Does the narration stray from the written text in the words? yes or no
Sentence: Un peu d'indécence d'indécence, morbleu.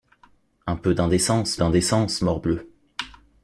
no